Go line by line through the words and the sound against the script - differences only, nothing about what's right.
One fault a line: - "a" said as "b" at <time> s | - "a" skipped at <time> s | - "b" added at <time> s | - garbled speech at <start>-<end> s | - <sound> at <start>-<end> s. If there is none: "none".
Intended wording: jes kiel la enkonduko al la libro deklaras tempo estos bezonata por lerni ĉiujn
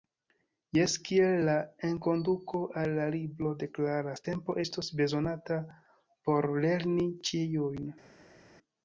none